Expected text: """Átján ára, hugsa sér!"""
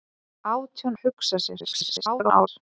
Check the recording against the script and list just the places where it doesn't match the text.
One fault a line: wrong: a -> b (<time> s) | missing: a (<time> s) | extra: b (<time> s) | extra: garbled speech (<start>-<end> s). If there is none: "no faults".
missing: ára (1.0 s)
extra: garbled speech (1.6-2.5 s)